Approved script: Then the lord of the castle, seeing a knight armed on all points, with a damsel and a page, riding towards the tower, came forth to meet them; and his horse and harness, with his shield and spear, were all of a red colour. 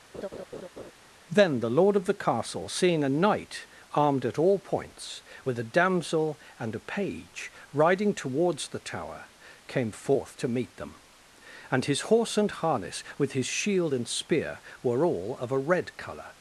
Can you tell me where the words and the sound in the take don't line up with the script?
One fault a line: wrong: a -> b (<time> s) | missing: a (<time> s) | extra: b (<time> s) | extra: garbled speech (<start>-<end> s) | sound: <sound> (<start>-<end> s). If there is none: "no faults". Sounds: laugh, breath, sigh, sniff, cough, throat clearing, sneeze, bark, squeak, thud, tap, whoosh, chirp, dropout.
sound: laugh (0.1-0.9 s)
wrong: on -> at (4.2 s)